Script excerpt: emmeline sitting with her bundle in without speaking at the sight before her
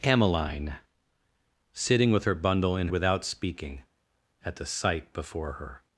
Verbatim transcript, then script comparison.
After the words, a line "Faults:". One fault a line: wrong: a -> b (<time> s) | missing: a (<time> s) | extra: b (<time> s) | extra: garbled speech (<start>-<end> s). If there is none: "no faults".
emmeline sitting with her bundle in without speaking at the sight before her
Faults:
no faults